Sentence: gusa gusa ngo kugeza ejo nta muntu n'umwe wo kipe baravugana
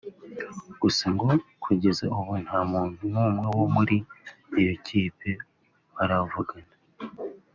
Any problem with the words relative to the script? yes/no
yes